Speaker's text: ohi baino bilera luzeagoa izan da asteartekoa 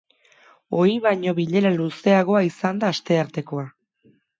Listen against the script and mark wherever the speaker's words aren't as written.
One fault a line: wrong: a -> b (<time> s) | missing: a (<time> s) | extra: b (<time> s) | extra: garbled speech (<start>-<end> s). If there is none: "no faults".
no faults